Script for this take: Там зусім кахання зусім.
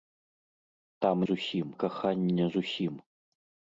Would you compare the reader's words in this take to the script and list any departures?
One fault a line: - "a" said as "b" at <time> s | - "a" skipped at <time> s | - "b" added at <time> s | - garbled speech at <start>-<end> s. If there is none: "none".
none